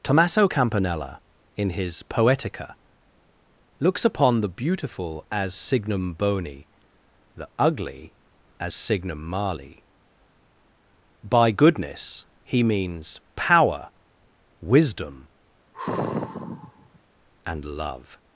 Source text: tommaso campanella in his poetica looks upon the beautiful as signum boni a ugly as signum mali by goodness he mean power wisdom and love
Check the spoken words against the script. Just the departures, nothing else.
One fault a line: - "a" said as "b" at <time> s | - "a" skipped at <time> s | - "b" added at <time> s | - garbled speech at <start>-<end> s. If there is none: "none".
- "a" said as "the" at 7.4 s
- "mean" said as "means" at 12.6 s